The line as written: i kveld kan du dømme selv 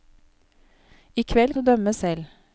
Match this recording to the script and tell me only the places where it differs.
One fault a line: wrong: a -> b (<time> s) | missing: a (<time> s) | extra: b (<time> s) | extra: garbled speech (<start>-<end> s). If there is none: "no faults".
missing: kan (1.6 s)